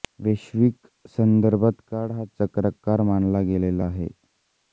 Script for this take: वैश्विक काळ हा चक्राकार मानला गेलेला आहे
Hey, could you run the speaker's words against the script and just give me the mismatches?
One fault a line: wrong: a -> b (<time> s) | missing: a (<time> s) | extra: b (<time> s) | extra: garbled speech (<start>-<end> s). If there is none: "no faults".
extra: संदर्भात (1.1 s)